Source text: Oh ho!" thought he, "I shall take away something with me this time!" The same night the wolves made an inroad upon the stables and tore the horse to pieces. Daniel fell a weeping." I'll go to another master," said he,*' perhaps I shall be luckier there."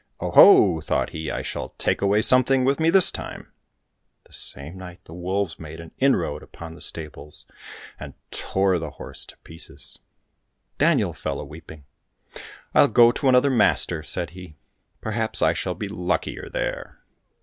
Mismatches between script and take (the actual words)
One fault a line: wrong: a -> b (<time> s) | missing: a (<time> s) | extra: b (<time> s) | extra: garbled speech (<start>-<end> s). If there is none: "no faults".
no faults